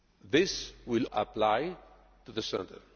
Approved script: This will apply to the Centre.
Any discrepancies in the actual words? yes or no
no